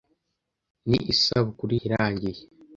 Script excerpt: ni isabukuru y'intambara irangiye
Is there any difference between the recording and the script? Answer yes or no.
yes